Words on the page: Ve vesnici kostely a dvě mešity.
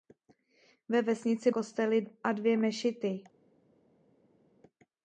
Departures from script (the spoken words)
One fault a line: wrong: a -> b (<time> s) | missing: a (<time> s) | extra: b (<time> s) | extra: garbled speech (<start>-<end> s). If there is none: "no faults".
no faults